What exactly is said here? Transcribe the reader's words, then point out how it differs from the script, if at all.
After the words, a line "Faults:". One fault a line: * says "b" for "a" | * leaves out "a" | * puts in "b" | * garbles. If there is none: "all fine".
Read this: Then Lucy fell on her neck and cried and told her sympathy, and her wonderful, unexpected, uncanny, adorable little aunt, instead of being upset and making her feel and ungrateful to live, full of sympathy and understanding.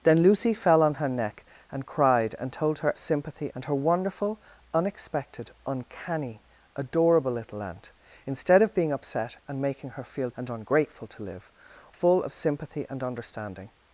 Then Lucy fell on her neck and cried and told her sympathy, and her wonderful, unexpected, uncanny, adorable little aunt, instead of being upset and making her feel and ungrateful to live, full of sympathy and understanding.
Faults:
all fine